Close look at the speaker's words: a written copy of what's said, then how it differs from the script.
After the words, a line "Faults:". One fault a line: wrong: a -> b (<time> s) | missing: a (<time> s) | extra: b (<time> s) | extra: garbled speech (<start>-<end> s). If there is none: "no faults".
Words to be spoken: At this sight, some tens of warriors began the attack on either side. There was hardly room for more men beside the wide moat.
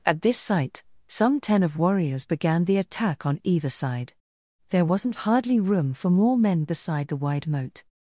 At this sight, some ten of warriors began the attack on either side. There wasn't hardly room for more men beside the wide moat.
Faults:
wrong: tens -> ten (1.4 s)
wrong: was -> wasn't (4.8 s)